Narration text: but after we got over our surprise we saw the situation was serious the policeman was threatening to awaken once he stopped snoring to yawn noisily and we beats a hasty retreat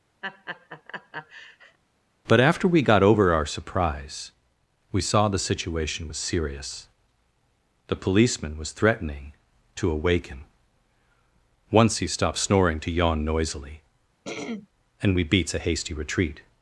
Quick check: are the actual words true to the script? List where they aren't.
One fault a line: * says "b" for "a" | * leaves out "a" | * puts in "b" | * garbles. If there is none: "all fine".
all fine